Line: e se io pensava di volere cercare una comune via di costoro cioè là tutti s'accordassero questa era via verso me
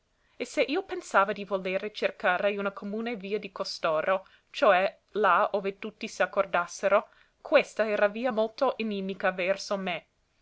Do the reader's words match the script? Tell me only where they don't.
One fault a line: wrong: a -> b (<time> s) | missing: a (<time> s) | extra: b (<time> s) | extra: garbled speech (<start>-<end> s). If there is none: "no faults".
extra: ove (5.5 s)
extra: molto inimica (8.3 s)